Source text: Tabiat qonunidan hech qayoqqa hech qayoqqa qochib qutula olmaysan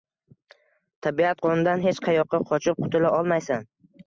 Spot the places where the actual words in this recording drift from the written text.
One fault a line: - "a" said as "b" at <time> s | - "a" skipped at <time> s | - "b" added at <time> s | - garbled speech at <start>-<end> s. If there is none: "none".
- "hech qayoqqa" skipped at 2.4 s